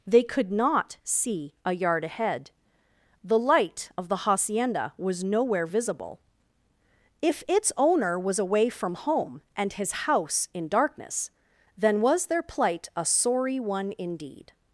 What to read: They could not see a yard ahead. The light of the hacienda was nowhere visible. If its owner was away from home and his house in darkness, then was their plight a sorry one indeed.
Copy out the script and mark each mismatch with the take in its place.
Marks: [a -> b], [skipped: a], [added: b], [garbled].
They could not see a yard ahead. The light of the hacienda was nowhere visible. If its owner was away from home and his house in darkness, then was their plight a sorry one indeed.